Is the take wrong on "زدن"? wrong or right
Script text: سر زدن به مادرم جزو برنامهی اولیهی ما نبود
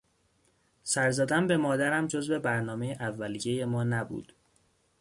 right